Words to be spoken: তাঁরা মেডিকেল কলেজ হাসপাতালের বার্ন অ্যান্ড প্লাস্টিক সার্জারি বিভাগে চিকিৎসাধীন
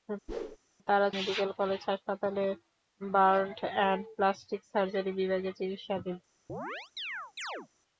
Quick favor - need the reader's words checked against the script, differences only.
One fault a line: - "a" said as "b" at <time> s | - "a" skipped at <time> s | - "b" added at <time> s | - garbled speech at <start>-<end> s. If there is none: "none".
none